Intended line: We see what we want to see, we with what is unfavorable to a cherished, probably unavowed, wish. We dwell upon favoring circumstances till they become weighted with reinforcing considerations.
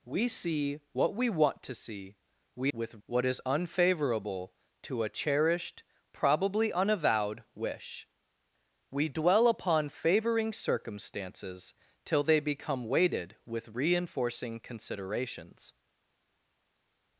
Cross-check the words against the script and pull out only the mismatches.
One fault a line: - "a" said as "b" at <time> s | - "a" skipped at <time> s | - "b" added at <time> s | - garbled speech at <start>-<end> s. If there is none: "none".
none